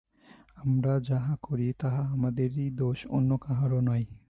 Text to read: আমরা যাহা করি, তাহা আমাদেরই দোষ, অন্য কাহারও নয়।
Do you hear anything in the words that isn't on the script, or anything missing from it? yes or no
no